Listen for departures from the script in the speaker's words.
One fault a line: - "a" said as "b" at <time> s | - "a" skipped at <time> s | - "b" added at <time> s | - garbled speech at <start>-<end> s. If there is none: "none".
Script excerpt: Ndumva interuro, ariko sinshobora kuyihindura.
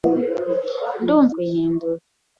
- "interuro ariko sinshobora" skipped at 1.3 s